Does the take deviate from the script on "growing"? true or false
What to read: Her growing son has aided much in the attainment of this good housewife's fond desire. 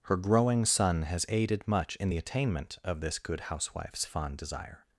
false